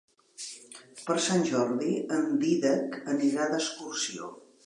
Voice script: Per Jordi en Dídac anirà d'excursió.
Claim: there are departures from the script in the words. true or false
true